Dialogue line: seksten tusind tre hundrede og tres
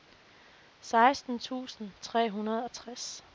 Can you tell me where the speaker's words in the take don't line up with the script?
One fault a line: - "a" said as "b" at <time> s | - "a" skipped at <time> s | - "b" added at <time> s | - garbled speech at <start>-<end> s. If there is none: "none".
none